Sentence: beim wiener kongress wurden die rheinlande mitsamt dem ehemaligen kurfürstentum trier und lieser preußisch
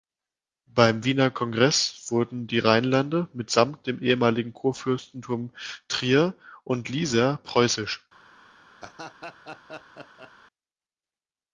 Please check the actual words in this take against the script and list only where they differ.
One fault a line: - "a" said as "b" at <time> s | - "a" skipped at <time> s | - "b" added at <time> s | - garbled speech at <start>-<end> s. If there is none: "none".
none